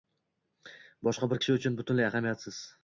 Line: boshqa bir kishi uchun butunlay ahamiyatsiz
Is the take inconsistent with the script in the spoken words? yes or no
no